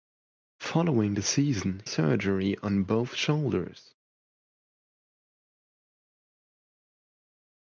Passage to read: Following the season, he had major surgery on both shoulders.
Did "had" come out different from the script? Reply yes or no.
yes